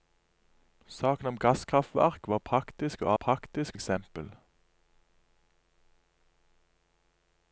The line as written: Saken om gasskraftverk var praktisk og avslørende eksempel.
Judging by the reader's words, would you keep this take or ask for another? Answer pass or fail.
fail